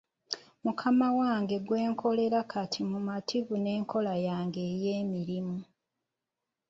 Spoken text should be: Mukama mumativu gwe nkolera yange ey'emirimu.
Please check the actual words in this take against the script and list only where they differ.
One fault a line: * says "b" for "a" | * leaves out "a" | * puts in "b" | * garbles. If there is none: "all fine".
* says "wange" for "mumativu"
* puts in "kati mumativu n'enkola"